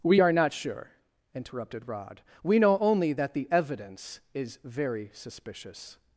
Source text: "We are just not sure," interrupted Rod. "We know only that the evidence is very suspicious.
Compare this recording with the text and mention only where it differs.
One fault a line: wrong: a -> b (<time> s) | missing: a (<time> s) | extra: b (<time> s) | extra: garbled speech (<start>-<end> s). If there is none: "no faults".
missing: just (0.3 s)